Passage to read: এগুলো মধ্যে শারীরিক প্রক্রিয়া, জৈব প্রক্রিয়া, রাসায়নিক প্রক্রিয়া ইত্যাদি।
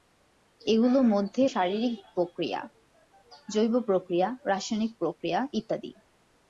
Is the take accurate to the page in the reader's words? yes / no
yes